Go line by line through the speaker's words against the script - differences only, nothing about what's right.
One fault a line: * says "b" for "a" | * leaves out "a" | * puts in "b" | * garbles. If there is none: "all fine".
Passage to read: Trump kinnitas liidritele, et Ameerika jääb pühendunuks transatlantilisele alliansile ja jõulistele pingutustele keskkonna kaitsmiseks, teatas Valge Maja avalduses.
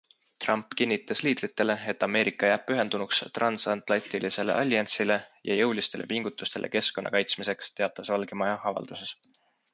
all fine